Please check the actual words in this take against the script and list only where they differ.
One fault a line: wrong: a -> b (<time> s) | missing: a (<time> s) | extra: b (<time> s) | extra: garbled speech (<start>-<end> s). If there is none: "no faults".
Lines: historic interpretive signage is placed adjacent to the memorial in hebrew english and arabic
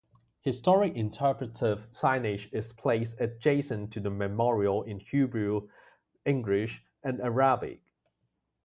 no faults